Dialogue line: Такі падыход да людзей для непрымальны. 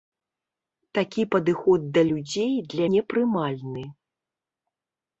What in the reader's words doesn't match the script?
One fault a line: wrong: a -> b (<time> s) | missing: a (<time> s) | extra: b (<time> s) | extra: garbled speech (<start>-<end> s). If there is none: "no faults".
no faults